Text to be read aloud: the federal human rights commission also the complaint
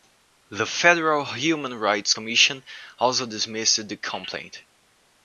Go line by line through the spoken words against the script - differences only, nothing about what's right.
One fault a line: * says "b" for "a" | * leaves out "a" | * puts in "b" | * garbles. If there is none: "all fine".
* puts in "dismissed"